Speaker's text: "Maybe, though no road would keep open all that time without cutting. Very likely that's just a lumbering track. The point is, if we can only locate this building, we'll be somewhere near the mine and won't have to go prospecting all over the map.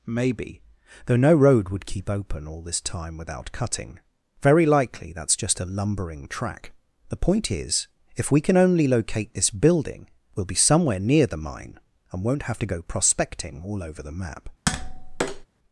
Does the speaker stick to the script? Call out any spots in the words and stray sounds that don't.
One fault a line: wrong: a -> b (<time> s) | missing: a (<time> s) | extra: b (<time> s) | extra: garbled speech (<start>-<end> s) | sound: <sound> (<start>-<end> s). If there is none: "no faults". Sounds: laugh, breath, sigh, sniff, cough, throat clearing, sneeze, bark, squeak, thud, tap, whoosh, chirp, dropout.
wrong: that -> this (2.6 s)
sound: tap (14.7-15.5 s)